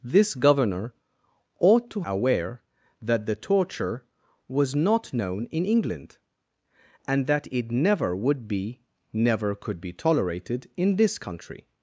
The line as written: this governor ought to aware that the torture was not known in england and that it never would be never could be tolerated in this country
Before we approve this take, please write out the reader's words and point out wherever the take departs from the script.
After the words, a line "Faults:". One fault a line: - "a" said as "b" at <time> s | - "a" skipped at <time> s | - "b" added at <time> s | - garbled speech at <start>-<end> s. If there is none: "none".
this governor ought to aware that the torture was not known in england and that it never would be never could be tolerated in this country
Faults:
none